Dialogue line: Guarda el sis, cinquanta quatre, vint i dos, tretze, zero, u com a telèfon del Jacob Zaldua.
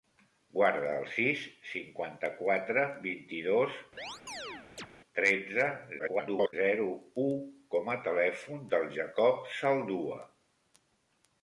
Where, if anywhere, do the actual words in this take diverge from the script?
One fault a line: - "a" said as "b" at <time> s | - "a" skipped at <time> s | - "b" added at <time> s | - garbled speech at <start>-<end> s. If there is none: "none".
- garbled speech at 6.0-6.5 s